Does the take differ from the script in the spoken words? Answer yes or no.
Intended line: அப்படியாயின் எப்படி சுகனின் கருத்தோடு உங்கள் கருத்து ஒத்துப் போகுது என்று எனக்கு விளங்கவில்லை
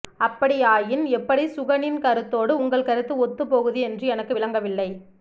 no